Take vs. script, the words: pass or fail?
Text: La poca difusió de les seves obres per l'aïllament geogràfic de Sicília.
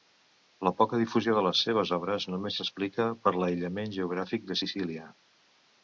fail